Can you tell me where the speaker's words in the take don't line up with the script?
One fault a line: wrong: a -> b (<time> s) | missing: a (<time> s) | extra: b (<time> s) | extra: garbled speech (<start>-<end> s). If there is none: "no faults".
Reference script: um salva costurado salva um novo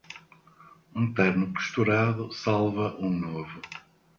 wrong: salva -> terno (1.1 s)